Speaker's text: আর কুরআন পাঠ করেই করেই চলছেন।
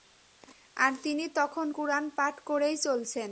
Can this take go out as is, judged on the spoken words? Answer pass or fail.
fail